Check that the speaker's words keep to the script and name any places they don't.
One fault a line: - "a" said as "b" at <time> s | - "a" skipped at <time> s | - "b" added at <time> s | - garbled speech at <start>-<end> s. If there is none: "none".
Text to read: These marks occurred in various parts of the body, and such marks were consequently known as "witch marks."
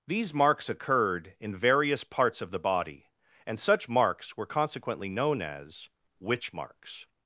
none